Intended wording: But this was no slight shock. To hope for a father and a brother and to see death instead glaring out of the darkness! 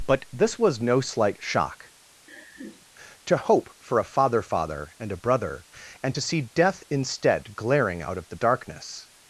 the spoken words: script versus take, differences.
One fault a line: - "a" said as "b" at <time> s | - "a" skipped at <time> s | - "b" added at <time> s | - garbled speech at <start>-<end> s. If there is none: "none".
- "father" added at 4.4 s